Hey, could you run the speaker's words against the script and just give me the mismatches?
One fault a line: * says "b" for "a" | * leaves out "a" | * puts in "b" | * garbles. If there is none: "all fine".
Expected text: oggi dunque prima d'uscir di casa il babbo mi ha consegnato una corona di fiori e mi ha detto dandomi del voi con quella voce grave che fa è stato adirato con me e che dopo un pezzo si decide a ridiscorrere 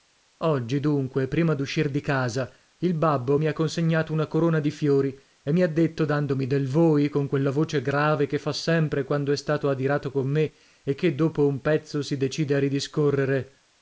* puts in "sempre quando"